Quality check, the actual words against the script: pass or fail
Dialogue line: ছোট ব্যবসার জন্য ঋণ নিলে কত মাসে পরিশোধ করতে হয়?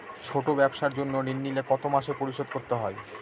pass